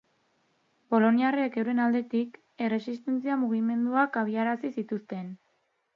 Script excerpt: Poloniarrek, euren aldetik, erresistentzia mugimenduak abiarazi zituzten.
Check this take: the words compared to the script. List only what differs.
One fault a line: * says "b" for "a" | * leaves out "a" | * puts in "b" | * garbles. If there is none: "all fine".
all fine